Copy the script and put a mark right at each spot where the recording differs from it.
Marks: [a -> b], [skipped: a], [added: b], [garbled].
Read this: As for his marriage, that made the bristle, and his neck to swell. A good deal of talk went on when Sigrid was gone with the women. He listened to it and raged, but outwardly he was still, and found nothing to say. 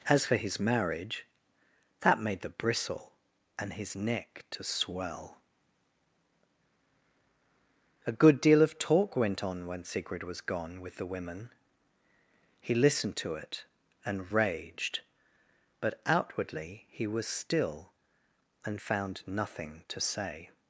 As for his marriage, that made the bristle, and his neck to swell. A good deal of talk went on when Sigrid was gone with the women. He listened to it and raged, but outwardly he was still, and found nothing to say.